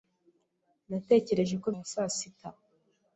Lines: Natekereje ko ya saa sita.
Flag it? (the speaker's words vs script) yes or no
no